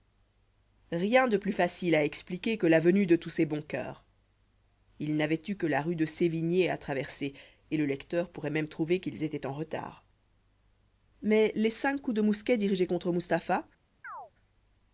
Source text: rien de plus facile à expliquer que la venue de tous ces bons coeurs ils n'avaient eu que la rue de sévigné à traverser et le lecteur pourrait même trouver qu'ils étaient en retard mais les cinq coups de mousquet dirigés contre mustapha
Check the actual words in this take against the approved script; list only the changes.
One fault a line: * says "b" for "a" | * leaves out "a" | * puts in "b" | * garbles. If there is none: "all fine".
all fine